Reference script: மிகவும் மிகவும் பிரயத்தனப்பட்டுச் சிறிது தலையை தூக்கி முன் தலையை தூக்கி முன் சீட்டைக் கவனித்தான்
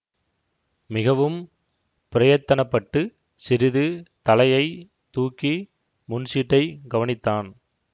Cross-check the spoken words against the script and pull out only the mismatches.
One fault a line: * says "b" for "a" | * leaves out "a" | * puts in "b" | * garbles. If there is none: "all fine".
* leaves out "மிகவும்"
* leaves out "தலையை தூக்கி முன்"